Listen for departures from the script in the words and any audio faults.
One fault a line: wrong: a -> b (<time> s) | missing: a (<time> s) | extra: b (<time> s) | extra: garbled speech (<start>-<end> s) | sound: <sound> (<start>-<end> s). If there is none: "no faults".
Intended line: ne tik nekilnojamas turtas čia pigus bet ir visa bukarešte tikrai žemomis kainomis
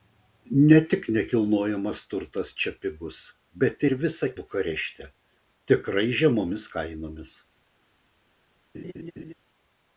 sound: laugh (8.7-9.3 s)